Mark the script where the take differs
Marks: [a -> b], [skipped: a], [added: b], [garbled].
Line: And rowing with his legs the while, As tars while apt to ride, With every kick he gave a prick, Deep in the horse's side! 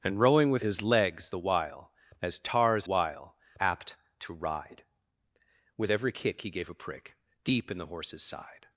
And rowing with his legs the while, As tars while apt to ride, With every kick he gave a prick, Deep in the horse's side!